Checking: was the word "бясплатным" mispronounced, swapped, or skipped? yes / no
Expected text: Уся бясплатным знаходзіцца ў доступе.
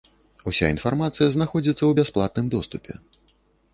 yes